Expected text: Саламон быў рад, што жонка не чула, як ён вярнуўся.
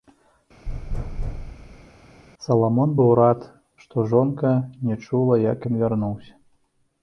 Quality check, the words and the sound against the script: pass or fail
fail